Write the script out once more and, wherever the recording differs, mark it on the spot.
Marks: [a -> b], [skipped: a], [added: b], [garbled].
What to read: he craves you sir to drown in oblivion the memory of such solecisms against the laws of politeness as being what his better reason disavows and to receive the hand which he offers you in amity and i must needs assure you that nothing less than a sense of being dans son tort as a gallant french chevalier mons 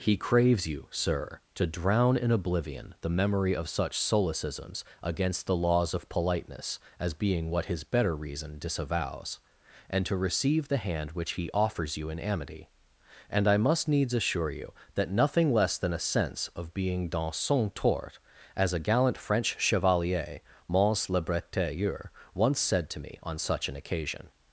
he craves you sir to drown in oblivion the memory of such solecisms against the laws of politeness as being what his better reason disavows and to receive the hand which he offers you in amity and i must needs assure you that nothing less than a sense of being dans son tort as a gallant french chevalier mons [added: le bretailleur once said to me on such an occasion]